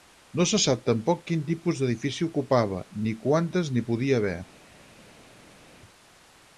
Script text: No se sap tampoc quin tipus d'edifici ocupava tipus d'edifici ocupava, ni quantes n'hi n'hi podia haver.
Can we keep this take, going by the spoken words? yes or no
no